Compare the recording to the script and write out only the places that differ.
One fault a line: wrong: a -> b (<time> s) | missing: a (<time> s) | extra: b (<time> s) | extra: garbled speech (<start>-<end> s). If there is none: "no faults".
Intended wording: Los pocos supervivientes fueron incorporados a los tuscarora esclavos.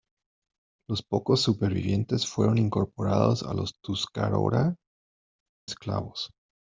no faults